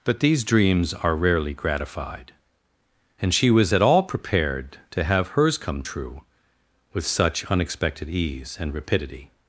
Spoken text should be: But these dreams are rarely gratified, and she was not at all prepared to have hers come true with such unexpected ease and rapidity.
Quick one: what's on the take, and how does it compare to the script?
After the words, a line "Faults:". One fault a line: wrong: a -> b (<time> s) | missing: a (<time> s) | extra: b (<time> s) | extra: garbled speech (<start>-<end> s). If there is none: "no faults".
But these dreams are rarely gratified, and she was at all prepared to have hers come true with such unexpected ease and rapidity.
Faults:
missing: not (3.7 s)